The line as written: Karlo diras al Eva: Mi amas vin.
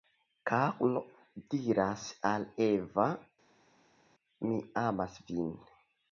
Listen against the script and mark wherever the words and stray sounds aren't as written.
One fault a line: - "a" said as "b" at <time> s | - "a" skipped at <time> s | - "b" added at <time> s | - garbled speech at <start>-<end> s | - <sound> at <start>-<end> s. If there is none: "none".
none